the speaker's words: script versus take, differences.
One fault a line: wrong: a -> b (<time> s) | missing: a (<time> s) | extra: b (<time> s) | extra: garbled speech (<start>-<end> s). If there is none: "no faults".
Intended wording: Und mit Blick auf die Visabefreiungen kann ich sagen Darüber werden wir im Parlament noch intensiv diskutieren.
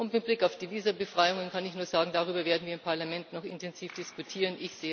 extra: nur (1.8 s)